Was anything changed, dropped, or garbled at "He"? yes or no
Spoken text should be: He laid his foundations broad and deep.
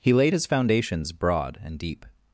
no